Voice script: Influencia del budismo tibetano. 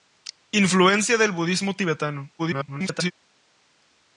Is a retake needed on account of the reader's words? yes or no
yes